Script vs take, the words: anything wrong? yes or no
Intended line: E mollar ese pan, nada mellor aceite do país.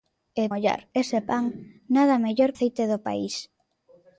no